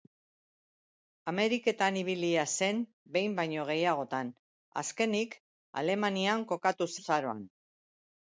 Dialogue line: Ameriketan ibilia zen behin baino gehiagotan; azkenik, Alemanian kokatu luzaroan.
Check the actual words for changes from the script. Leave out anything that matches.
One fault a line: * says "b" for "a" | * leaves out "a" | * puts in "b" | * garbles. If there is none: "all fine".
all fine